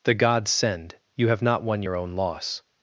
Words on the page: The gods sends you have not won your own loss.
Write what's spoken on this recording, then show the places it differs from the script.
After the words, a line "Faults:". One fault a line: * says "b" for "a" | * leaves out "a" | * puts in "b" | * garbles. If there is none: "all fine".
The gods send you have not won your own loss.
Faults:
* says "send" for "sends"